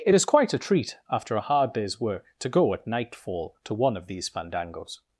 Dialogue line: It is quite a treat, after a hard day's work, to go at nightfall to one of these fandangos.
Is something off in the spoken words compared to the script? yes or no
no